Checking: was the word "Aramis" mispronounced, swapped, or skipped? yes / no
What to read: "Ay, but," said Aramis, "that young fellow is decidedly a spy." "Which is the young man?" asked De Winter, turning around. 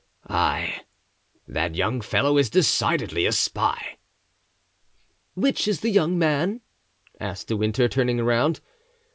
yes